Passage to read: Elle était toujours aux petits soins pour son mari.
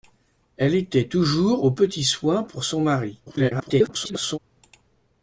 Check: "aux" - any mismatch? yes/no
no